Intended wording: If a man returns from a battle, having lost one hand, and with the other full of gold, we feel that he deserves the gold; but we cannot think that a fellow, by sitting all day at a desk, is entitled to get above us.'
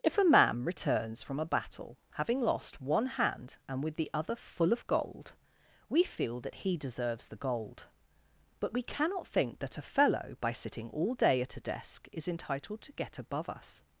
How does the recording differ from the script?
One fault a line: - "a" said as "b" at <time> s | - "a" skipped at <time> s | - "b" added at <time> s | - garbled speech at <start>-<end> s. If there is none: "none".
none